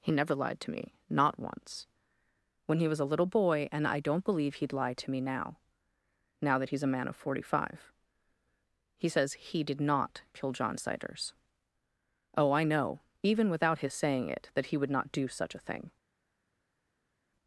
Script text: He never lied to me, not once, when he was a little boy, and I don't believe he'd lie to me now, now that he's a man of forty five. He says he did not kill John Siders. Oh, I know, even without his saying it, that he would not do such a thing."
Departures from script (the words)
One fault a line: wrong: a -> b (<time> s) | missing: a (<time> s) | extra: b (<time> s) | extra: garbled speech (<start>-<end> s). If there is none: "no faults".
no faults